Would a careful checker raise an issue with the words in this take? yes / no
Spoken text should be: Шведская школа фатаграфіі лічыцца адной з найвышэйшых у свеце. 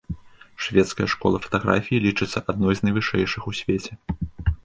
no